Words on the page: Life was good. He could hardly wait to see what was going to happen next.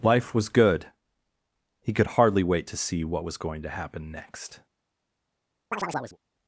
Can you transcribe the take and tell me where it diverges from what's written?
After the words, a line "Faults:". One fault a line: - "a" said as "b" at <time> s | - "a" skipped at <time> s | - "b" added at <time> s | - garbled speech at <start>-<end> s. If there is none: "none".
Life was good. He could hardly wait to see what was going to happen next.
Faults:
none